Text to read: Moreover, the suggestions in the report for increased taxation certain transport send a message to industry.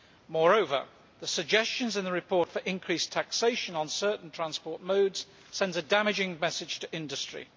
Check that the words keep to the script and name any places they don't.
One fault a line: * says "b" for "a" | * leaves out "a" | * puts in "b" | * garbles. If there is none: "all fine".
* puts in "on"
* puts in "modes"
* puts in "damaging"